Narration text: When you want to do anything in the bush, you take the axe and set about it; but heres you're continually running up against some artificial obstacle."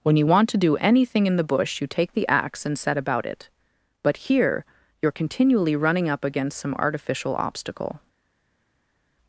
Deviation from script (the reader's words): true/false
true